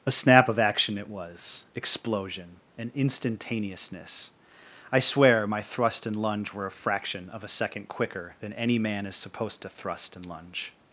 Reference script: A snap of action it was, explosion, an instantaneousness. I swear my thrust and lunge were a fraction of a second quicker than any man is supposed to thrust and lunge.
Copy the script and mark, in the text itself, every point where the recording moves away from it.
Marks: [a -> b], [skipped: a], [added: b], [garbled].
A snap of action it was, explosion, an instantaneousness. I swear my thrust and lunge were a fraction of a second quicker than any man is supposed to thrust and lunge.